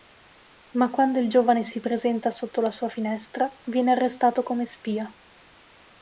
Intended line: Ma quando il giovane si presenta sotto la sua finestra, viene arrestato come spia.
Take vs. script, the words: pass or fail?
pass